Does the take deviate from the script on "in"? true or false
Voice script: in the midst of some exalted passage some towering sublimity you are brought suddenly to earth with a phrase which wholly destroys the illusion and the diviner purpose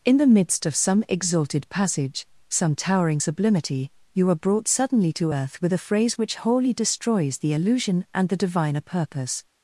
false